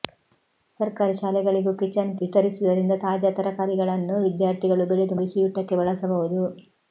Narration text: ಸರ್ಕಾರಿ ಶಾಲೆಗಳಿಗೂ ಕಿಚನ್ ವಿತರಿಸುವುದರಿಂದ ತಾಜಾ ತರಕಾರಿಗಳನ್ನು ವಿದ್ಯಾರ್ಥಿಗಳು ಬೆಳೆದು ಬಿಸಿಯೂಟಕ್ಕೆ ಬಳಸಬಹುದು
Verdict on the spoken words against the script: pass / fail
pass